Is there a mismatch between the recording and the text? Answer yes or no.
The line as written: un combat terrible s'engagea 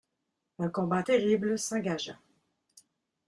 no